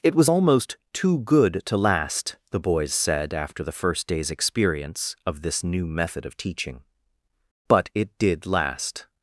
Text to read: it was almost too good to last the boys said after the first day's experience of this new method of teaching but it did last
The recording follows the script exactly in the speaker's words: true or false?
true